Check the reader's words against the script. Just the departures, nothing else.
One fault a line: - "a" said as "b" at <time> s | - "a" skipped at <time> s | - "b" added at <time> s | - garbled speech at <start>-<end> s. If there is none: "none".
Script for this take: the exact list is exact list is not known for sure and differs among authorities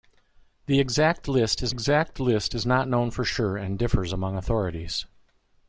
none